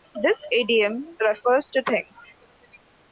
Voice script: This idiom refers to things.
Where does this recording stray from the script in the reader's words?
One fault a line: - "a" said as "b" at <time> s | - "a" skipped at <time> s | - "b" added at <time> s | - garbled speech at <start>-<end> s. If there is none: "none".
none